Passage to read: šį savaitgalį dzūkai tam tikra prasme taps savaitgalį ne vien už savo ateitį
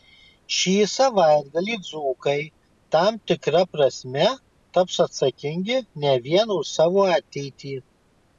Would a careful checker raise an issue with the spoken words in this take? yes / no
yes